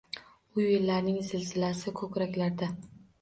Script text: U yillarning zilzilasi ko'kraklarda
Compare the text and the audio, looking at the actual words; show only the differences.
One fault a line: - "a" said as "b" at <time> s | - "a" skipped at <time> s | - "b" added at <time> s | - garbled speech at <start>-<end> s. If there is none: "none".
none